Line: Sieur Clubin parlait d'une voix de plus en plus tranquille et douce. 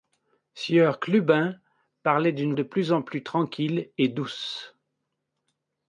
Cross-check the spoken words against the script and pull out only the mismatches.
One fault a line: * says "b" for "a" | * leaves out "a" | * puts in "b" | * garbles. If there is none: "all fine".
* leaves out "voix"